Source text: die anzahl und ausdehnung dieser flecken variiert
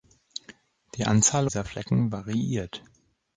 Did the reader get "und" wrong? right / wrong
wrong